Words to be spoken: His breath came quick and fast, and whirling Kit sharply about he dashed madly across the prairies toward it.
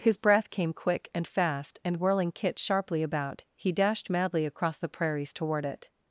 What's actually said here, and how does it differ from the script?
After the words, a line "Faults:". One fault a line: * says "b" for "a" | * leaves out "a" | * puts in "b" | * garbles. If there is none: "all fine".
His breath came quick and fast, and whirling Kit sharply about he dashed madly across the prairies toward it.
Faults:
all fine